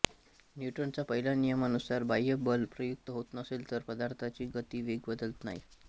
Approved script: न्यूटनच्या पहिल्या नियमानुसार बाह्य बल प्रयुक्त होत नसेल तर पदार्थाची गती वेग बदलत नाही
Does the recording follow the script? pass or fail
pass